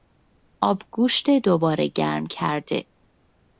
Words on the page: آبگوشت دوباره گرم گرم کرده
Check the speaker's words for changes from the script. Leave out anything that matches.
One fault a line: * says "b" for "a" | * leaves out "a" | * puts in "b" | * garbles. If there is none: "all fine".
* leaves out "گرم"